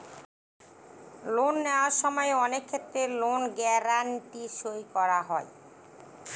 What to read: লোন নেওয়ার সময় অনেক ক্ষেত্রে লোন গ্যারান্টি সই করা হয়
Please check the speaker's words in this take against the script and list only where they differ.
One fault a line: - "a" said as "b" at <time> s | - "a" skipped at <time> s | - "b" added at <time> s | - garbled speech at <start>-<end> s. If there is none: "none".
none